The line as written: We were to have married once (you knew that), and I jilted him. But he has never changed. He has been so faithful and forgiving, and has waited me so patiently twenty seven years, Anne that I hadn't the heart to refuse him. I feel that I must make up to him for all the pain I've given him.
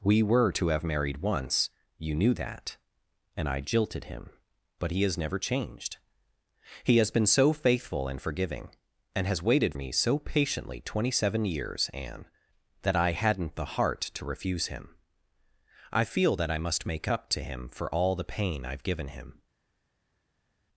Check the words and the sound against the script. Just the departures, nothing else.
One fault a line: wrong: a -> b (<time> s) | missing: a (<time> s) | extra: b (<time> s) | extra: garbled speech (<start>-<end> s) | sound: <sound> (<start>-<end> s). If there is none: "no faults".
no faults